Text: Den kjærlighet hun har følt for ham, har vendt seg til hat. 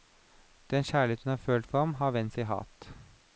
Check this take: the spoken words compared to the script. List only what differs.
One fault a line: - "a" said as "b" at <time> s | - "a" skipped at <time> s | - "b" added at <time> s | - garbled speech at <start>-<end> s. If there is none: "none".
- "seg" skipped at 2.3 s